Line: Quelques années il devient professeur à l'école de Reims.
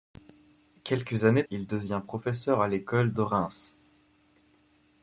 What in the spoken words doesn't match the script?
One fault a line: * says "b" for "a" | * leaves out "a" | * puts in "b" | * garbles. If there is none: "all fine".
all fine